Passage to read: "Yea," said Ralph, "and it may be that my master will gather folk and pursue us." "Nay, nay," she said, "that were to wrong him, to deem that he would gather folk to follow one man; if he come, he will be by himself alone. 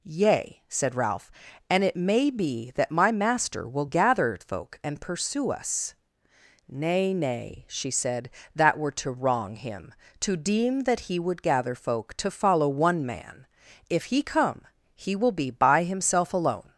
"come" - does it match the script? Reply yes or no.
yes